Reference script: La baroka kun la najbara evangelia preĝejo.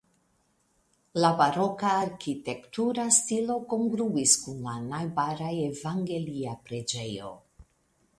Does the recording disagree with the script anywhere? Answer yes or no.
yes